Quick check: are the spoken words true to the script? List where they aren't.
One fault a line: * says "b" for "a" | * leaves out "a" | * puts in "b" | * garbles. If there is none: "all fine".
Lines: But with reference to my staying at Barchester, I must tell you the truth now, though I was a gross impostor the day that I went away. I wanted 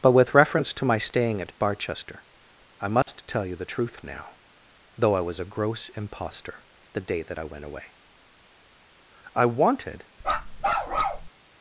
all fine